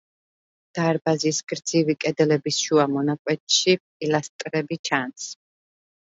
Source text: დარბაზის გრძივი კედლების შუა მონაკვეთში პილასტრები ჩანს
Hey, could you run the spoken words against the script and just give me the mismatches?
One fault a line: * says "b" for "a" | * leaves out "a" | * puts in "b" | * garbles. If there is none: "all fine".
all fine